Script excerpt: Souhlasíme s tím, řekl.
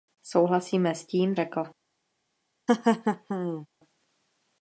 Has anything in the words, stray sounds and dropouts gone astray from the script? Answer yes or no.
yes